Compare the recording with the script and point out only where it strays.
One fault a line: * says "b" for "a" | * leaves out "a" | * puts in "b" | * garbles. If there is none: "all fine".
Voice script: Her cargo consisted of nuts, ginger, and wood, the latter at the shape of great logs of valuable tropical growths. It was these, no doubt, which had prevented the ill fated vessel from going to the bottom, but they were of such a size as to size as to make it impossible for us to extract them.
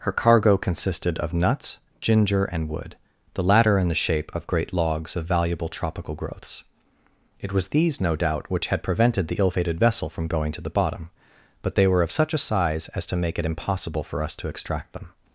* says "in" for "at"
* leaves out "size as to"